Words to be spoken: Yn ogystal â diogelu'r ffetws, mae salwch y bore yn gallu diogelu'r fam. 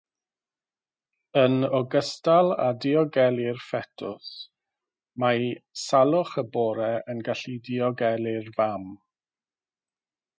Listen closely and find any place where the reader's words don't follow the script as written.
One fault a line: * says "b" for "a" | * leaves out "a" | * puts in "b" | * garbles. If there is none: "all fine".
all fine